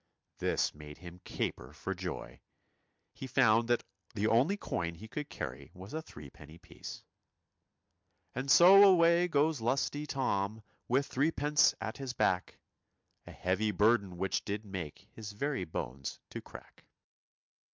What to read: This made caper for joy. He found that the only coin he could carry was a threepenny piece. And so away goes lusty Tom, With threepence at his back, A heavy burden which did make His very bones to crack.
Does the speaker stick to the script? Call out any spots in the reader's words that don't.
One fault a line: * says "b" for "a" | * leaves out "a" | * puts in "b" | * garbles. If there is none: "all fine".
* puts in "him"